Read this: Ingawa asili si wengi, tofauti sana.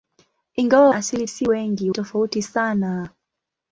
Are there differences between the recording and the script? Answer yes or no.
no